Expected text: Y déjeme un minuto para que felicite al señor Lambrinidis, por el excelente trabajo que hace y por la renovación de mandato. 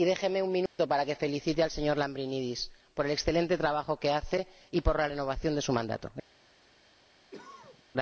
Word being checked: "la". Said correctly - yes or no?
yes